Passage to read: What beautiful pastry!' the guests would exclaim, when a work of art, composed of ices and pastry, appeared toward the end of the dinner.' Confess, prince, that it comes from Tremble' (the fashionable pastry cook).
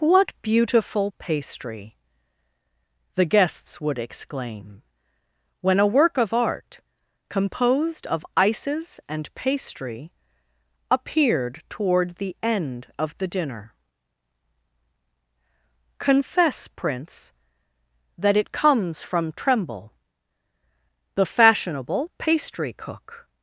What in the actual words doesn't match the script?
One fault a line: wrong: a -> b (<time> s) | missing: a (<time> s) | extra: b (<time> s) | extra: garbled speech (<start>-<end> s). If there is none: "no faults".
no faults